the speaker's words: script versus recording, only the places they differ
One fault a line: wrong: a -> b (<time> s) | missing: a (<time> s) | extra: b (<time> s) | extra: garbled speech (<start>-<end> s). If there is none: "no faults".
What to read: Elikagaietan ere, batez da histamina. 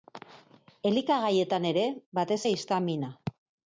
no faults